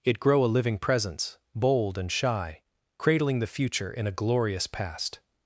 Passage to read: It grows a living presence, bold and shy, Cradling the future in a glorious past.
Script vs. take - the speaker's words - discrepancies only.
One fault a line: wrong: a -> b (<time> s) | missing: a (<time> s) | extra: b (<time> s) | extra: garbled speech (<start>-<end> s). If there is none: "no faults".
wrong: grows -> grow (0.2 s)